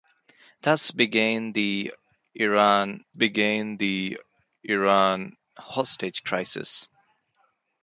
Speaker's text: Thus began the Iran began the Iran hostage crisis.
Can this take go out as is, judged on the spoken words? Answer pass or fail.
pass